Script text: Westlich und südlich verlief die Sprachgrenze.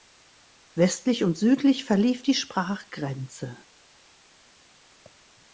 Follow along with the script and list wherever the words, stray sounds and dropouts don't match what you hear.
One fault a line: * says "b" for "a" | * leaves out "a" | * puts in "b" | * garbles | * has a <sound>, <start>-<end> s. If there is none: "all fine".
all fine